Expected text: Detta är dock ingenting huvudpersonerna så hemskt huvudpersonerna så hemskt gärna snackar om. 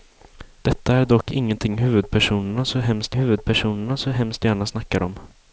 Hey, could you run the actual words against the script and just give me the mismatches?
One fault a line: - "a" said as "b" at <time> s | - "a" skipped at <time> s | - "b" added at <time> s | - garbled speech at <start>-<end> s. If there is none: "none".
none